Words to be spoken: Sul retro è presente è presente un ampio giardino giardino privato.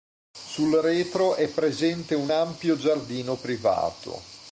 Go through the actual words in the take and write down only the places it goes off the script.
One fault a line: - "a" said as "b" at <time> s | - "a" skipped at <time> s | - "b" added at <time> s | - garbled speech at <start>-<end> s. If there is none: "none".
- "è presente" skipped at 2.1 s
- "giardino" skipped at 3.3 s